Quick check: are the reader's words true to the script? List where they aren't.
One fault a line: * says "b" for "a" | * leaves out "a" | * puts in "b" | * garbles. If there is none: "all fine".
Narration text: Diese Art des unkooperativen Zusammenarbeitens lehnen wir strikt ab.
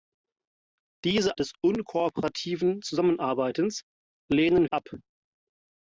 * leaves out "Art"
* leaves out "wir strikt"